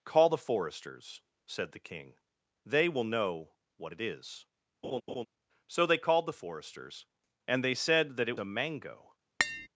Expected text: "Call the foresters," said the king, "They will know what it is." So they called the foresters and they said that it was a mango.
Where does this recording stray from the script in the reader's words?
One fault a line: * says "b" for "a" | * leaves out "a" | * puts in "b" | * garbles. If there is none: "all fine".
* leaves out "was"